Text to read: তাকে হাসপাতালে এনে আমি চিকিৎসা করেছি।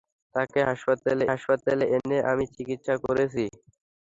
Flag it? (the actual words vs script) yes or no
yes